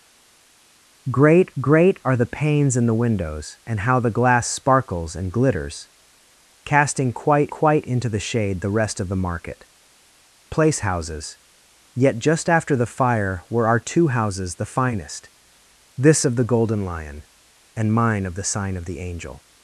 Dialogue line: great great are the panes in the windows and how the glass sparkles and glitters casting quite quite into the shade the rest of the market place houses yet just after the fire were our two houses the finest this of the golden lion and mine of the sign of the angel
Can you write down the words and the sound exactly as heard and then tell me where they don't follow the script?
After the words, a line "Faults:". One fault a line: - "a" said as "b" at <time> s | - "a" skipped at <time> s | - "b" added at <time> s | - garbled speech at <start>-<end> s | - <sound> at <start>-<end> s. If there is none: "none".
great great are the panes in the windows and how the glass sparkles and glitters casting quite quite into the shade the rest of the market place houses yet just after the fire were our two houses the finest this of the golden lion and mine of the sign of the angel
Faults:
none